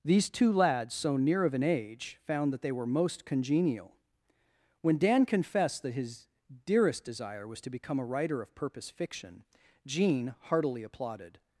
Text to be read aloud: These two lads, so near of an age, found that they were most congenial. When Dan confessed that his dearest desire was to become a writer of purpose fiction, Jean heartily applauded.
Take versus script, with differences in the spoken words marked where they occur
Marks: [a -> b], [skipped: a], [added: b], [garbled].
These two lads, so near of an age, found that they were most congenial. When Dan confessed that his dearest desire was to become a writer of purpose fiction, Jean heartily applauded.